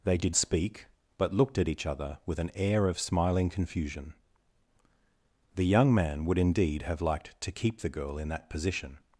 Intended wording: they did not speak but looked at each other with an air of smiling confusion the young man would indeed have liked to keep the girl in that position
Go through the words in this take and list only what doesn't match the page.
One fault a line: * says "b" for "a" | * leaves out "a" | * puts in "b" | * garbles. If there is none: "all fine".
* leaves out "not"